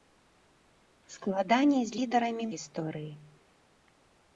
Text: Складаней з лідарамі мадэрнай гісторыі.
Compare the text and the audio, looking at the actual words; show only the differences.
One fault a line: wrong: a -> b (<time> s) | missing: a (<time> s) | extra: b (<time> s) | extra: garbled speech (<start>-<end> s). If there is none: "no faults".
missing: мадэрнай (2.5 s)